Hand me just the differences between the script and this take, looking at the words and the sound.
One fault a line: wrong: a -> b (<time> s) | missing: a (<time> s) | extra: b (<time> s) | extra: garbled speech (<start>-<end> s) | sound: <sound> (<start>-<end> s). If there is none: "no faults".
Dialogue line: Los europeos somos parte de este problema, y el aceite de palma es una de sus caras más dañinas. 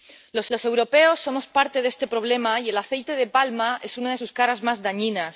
extra: los (0.5 s)